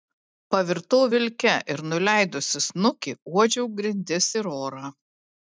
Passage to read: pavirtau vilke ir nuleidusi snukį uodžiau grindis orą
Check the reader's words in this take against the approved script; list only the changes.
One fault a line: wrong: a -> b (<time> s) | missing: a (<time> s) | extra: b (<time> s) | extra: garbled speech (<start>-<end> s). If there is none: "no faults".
extra: ir (4.4 s)